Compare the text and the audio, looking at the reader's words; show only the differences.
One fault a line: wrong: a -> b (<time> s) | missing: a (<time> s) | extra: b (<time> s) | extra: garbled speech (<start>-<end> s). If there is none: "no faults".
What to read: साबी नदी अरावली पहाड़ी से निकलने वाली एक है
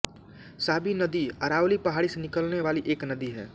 extra: नदी (3.1 s)